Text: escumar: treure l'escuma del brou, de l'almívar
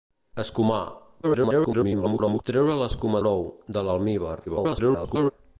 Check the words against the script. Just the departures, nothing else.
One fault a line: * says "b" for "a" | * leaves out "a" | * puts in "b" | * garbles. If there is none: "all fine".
* garbles
* leaves out "del"
* garbles